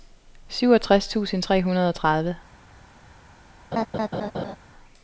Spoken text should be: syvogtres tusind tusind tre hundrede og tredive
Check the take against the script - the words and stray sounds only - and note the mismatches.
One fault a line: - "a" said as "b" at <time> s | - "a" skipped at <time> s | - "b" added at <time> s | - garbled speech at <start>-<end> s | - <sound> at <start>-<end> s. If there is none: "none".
- "tusind" skipped at 1.4 s
- laugh at 3.7-4.6 s